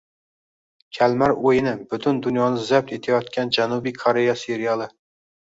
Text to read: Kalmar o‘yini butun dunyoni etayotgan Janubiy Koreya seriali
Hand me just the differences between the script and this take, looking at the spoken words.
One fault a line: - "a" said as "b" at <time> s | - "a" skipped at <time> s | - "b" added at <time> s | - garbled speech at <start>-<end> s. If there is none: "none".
- "zabt" added at 2.7 s